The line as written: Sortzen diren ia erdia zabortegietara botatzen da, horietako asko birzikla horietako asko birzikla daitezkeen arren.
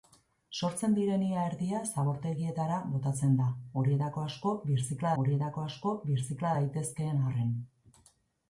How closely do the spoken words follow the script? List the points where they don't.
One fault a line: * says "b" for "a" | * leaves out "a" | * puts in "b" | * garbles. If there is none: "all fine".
all fine